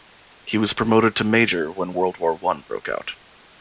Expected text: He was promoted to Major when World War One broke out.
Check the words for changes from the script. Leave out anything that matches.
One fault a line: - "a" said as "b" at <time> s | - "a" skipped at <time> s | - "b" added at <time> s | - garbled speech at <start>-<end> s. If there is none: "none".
none